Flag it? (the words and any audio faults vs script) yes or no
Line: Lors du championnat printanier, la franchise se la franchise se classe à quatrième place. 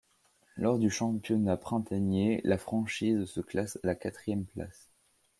yes